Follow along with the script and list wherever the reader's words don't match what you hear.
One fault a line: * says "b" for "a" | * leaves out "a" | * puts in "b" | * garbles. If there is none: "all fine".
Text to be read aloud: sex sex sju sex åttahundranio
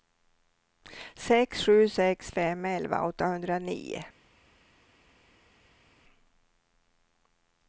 * puts in "sju"
* says "fem elva" for "sju sex"